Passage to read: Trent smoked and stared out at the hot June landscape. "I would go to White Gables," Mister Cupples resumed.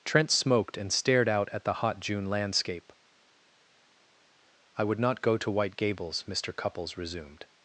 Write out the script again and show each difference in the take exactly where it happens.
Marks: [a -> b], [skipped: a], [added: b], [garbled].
Trent smoked and stared out at the hot June landscape. "I would [added: not] go to White Gables," Mister Cupples resumed.